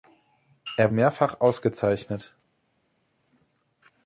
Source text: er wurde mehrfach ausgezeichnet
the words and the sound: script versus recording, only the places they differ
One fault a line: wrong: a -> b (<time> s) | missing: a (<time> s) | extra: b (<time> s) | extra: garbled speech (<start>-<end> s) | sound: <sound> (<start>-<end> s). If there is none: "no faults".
missing: wurde (0.9 s)